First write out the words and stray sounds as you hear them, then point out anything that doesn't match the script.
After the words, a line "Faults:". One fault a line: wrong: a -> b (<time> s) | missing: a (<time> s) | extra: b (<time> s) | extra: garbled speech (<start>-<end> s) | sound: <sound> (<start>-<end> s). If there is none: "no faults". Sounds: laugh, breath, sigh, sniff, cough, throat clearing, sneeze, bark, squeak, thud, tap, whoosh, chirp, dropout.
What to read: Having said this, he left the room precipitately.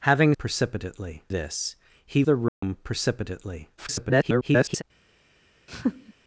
Having precipitately this, he the room precipitately. [garbled]
Faults:
wrong: said -> precipitately (0.4 s)
missing: left (2.2 s)
sound: dropout (2.5-2.6 s)
extra: garbled speech (3.8-4.8 s)
sound: laugh (5.7-6.1 s)